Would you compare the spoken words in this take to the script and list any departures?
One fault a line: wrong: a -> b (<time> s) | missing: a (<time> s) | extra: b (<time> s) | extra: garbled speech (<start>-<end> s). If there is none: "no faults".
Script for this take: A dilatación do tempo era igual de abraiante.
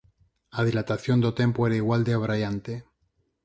no faults